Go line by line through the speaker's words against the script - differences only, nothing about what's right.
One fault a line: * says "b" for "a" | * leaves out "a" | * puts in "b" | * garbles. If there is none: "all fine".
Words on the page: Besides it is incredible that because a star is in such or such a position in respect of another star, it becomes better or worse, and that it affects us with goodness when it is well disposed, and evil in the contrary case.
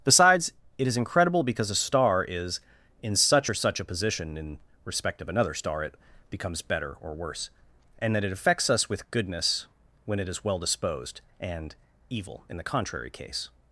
* leaves out "that"